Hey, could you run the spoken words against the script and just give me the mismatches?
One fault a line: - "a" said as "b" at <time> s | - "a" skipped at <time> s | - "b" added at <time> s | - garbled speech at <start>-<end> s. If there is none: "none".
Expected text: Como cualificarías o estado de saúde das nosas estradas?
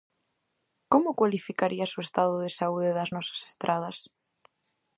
none